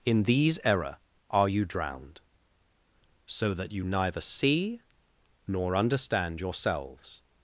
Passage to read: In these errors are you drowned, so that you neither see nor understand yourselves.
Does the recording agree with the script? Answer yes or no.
no